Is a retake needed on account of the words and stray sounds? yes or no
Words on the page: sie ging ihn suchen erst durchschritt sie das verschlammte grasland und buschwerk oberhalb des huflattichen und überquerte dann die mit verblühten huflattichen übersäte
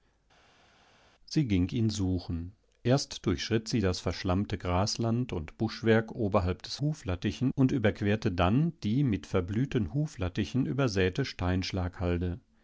no